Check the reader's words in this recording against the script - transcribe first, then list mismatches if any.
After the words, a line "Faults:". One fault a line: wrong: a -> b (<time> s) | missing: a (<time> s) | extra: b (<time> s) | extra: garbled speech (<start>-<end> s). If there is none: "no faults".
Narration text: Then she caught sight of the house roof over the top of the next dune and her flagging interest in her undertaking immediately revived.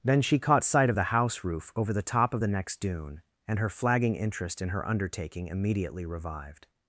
Then she caught sight of the house roof over the top of the next dune and her flagging interest in her undertaking immediately revived.
Faults:
no faults